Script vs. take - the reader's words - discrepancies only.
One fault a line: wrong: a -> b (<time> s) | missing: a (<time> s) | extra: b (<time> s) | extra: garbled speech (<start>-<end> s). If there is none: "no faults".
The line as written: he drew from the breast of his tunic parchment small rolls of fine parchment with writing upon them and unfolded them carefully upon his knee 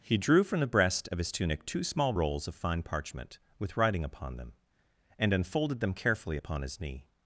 wrong: parchment -> two (1.6 s)